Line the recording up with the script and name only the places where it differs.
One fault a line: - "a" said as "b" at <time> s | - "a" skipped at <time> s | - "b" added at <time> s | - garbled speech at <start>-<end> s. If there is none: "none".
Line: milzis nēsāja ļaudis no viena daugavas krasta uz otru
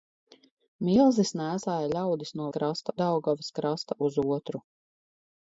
- "viena" said as "krasta" at 2.6 s